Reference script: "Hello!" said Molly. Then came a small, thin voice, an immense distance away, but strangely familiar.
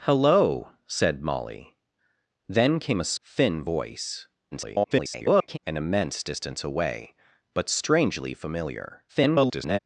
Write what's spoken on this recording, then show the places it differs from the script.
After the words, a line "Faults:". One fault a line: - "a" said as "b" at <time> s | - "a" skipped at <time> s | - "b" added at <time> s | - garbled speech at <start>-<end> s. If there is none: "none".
"Hello!" said Molly. Then came a thin voice, [garbled] an immense distance away, but strangely familiar. [garbled]
Faults:
- "small" skipped at 3.1 s
- garbled speech at 4.5-5.6 s
- garbled speech at 9.1-9.8 s